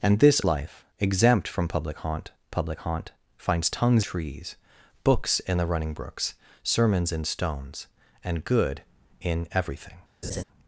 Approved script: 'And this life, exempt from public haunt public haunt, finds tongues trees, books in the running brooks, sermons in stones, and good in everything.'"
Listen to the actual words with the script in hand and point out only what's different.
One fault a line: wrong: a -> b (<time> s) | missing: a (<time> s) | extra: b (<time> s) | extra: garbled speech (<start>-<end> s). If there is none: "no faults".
no faults